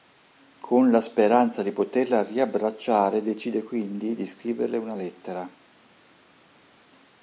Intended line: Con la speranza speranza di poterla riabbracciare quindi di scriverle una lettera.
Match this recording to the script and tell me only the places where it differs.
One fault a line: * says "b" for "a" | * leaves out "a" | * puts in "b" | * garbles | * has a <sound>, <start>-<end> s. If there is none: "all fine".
* leaves out "speranza"
* puts in "decide"